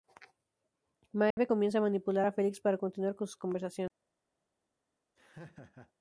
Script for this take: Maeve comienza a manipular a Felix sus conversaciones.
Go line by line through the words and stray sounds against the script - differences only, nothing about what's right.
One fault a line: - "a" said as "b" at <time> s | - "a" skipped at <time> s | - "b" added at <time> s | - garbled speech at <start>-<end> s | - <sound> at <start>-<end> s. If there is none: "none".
- dropout at 1.3-1.4 s
- "para continuar con" added at 2.6 s
- laugh at 5.2-5.9 s